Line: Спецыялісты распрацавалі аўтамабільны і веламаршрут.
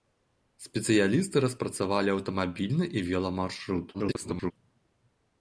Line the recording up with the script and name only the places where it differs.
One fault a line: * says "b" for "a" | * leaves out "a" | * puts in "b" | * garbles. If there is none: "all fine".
* garbles